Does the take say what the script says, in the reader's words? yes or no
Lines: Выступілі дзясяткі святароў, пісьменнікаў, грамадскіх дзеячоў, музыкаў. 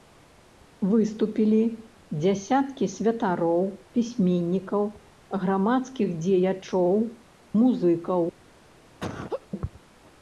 yes